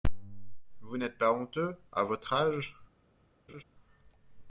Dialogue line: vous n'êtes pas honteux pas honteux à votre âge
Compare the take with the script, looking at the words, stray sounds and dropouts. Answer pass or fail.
fail